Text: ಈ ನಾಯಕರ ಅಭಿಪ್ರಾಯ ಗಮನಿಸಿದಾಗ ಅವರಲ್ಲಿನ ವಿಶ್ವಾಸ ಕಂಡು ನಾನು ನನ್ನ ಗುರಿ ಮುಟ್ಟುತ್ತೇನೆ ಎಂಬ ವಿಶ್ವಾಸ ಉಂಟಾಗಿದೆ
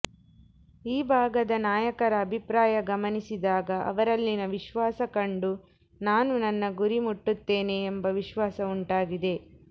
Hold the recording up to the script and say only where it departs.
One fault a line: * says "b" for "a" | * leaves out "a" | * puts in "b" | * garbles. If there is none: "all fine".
* puts in "ಭಾಗದ"